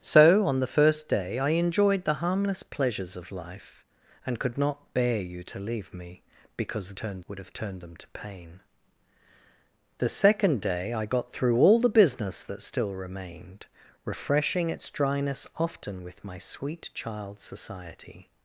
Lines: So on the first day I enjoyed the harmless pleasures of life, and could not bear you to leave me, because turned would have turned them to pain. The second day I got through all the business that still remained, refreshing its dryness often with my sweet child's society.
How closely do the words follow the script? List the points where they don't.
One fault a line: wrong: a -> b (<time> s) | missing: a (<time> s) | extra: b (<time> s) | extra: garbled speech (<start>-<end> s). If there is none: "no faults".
no faults